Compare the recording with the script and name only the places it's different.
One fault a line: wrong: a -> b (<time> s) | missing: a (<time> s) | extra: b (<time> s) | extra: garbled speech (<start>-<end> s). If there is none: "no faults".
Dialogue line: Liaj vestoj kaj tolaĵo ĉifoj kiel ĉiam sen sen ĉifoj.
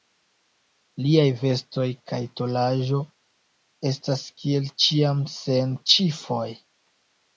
wrong: ĉifoj -> estas (3.9 s)
missing: sen (5.8 s)